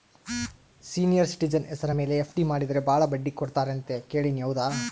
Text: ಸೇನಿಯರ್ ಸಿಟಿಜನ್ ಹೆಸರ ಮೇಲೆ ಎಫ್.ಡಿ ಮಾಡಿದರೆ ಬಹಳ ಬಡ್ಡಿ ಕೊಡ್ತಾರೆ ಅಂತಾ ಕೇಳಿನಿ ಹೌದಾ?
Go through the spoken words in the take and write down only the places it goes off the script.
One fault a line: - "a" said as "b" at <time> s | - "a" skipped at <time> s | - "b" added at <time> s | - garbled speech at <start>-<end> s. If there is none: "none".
none